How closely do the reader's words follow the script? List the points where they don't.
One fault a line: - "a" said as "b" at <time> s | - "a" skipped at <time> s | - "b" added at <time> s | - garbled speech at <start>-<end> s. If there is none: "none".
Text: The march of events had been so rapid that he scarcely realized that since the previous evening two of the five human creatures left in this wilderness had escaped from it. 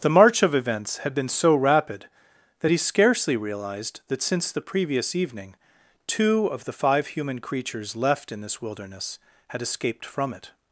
none